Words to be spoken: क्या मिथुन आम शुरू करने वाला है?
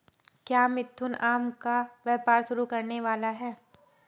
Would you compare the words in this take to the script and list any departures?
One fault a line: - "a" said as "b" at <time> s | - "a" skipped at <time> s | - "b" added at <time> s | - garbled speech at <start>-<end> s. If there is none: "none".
- "का व्यापार" added at 1.6 s